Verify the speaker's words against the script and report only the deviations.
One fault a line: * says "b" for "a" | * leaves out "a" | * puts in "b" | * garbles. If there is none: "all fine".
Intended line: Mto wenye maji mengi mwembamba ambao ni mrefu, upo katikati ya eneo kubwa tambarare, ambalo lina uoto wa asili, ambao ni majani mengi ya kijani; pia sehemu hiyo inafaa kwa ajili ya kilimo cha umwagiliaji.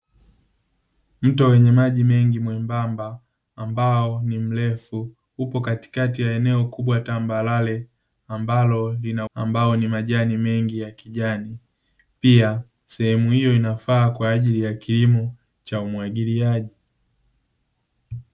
* leaves out "uoto wa asili"